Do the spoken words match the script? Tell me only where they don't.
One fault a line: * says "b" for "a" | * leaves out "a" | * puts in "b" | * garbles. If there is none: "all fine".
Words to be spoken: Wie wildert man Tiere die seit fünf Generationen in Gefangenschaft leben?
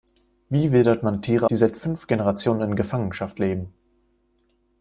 all fine